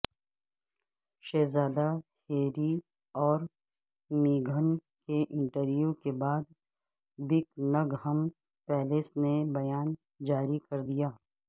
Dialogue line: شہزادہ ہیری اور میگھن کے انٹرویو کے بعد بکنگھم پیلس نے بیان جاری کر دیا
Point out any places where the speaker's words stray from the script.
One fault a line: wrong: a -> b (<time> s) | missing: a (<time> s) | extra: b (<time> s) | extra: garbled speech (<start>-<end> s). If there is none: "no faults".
no faults